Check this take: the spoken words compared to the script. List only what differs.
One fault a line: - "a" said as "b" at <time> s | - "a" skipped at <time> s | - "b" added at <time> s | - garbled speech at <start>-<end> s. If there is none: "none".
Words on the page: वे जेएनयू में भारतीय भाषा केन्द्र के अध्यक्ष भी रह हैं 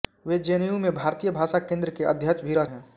none